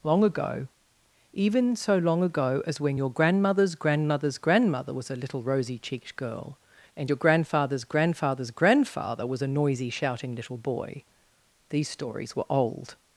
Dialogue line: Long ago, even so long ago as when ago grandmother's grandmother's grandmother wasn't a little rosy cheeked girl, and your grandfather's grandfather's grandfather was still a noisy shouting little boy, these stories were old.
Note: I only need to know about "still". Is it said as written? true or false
false